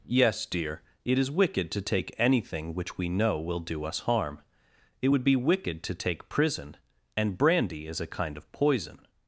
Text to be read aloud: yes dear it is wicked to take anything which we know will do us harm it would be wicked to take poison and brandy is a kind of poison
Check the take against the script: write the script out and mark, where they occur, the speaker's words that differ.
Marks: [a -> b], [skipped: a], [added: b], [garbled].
yes dear it is wicked to take anything which we know will do us harm it would be wicked to take [poison -> prison] and brandy is a kind of poison